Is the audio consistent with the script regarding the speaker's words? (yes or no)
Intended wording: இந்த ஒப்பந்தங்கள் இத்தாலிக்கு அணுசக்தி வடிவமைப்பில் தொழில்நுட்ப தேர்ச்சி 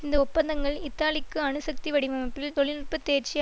yes